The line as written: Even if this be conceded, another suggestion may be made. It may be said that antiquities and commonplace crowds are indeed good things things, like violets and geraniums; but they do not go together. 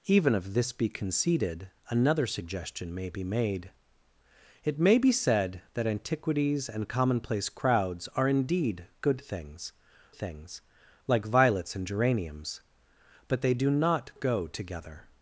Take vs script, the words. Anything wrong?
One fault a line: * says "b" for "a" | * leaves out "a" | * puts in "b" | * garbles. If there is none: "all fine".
all fine